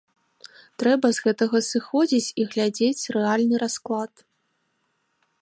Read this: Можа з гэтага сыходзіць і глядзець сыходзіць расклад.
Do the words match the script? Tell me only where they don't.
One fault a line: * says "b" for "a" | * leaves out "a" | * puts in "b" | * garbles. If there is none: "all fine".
* says "Трэба" for "Можа"
* says "рэальны" for "сыходзіць"